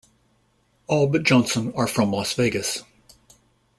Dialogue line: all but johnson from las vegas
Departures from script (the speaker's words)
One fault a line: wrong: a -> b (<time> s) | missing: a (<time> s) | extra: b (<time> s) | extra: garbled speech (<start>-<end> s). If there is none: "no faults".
extra: are (1.7 s)